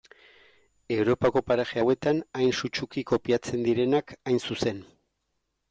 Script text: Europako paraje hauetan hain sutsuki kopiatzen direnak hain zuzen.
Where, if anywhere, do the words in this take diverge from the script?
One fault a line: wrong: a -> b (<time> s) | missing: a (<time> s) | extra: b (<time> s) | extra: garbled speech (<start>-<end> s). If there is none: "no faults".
no faults